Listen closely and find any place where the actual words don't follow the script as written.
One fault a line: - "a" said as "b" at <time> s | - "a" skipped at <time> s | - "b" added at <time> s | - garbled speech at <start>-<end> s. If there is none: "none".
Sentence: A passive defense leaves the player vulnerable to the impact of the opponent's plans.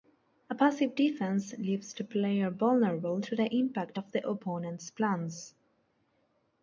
none